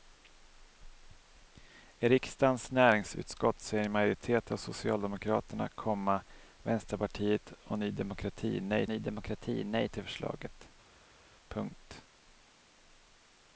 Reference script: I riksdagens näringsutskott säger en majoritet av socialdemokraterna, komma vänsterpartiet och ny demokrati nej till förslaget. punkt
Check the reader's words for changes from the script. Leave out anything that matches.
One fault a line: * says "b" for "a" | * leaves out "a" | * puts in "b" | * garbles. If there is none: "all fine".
* puts in "ny demokrati nej"